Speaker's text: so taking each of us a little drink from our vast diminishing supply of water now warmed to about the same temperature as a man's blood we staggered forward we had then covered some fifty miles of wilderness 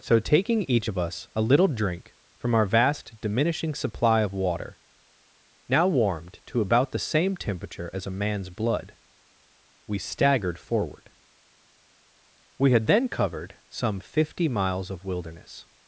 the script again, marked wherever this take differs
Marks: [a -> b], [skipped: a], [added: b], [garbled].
so taking each of us a little drink from our vast diminishing supply of water now warmed to about the same temperature as a man's blood we staggered forward we had then covered some fifty miles of wilderness